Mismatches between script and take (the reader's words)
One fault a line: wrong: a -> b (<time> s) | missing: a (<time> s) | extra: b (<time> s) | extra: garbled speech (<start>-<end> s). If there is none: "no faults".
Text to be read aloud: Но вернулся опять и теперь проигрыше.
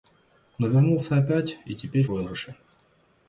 no faults